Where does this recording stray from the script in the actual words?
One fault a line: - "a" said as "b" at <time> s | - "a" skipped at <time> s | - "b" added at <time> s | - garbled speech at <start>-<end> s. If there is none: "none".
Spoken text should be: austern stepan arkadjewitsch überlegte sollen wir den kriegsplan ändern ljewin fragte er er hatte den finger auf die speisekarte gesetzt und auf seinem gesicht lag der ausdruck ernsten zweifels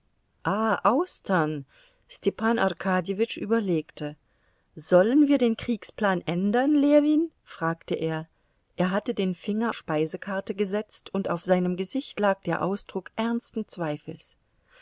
- "auf die" skipped at 9.8 s